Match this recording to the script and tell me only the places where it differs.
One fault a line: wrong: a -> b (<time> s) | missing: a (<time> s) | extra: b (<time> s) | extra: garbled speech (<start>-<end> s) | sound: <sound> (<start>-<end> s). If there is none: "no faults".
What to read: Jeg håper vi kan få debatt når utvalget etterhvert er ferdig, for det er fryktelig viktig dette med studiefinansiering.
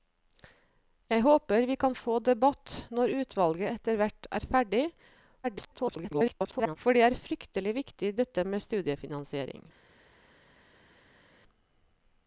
extra: garbled speech (5.4-6.8 s)